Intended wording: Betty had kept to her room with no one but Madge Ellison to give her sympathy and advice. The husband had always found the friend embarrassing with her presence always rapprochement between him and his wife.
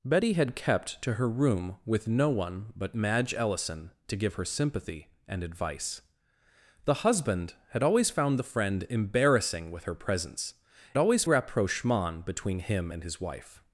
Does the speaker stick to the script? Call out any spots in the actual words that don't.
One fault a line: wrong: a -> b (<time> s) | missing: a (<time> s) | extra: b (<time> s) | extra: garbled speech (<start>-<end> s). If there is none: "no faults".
no faults